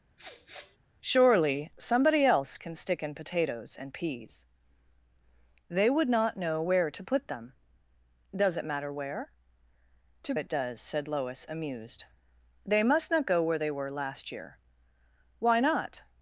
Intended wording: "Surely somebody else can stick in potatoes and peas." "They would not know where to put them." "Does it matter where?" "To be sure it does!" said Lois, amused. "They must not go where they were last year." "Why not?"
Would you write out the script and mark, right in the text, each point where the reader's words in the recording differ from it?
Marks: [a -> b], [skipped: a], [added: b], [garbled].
"Surely somebody else can stick in potatoes and peas." "They would not know where to put them." "Does it matter where?" "To [skipped: be sure] it does!" said Lois, amused. "They must not go where they were last year." "Why not?"